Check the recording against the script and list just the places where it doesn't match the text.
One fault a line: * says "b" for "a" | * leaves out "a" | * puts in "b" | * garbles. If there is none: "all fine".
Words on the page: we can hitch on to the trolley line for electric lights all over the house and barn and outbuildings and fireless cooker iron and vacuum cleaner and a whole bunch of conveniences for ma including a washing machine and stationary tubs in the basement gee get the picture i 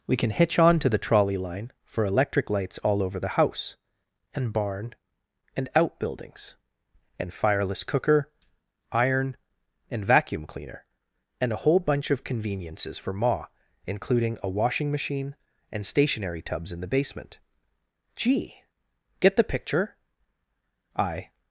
all fine